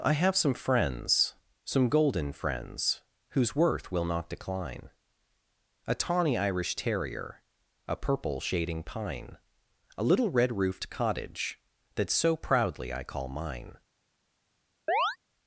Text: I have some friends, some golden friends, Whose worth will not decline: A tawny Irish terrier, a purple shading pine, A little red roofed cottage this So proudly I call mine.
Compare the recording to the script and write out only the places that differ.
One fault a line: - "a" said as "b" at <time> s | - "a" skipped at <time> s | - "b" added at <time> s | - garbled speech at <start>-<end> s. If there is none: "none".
- "this" said as "that" at 11.9 s